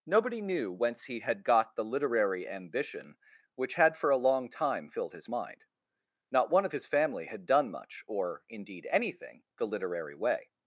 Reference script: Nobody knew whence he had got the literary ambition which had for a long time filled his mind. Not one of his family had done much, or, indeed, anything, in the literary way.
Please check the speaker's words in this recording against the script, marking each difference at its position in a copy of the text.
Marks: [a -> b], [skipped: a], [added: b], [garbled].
Nobody knew whence he had got the literary ambition which had for a long time filled his mind. Not one of his family had done much, or, indeed, anything, [skipped: in] the literary way.